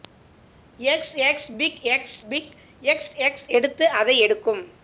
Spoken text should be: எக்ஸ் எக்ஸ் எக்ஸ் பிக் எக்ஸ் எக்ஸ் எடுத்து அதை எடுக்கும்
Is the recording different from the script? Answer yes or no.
yes